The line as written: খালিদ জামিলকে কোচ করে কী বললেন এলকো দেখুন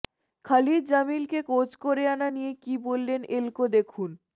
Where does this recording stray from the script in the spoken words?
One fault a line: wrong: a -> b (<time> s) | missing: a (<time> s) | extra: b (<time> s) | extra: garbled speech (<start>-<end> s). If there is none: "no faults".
extra: আনা নিয়ে (2.1 s)